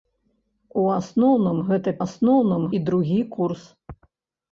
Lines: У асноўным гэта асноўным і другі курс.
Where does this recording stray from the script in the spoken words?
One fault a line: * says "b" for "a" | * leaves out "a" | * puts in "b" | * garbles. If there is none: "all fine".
all fine